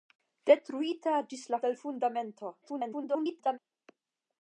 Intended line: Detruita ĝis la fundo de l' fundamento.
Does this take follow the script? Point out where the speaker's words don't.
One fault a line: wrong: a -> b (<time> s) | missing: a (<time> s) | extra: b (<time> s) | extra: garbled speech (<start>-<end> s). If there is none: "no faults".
missing: fundo (1.6 s)
extra: garbled speech (2.6-3.6 s)